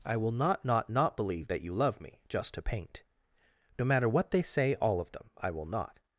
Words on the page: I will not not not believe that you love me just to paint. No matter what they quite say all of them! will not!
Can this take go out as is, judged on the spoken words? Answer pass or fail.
fail